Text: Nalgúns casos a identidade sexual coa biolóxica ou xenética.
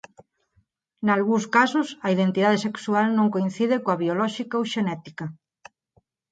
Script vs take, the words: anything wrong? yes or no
yes